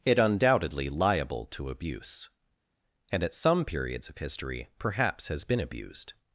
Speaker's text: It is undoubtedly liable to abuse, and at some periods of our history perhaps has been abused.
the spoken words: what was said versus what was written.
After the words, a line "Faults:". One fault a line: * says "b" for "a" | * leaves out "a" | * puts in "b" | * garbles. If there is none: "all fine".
It undoubtedly liable to abuse, and at some periods of history perhaps has been abused.
Faults:
* leaves out "is"
* leaves out "our"